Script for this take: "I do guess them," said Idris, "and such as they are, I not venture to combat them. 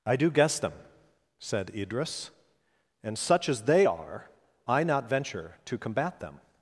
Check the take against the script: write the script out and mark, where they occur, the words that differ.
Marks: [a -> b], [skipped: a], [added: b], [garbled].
"I do guess them," said Idris, "and such as they are, I not venture to combat them.